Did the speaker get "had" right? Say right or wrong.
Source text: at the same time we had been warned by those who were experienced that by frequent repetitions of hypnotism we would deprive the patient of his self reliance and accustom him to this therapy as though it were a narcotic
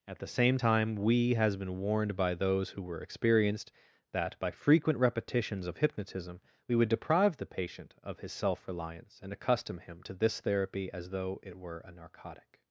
wrong